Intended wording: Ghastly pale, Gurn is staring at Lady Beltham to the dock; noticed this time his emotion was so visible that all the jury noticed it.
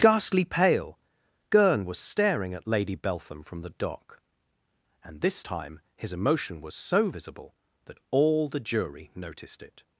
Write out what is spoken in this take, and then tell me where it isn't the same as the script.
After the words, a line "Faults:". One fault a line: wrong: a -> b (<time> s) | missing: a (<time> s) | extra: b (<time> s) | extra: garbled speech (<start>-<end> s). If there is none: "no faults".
Ghastly pale, Gurn was staring at Lady Beltham from the dock; and this time his emotion was so visible that all the jury noticed it.
Faults:
wrong: is -> was (1.9 s)
wrong: to -> from (3.4 s)
wrong: noticed -> and (5.0 s)